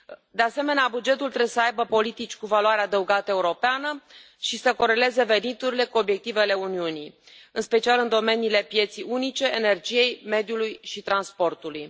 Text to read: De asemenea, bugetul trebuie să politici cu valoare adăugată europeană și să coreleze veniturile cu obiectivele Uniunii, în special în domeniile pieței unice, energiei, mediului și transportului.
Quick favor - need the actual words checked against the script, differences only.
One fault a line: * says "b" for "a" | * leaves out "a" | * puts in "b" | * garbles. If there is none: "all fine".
* puts in "aibă"